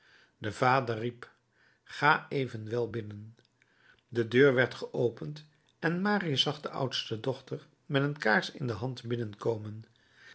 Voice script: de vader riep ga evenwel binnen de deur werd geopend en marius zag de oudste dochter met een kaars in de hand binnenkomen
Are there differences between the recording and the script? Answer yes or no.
no